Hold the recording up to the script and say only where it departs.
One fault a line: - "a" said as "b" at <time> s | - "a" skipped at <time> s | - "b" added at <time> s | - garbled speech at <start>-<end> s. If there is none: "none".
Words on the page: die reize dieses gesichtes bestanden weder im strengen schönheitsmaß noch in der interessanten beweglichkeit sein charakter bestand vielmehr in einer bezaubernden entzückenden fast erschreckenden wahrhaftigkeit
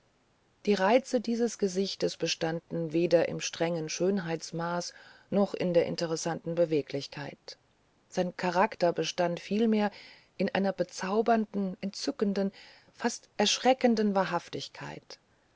none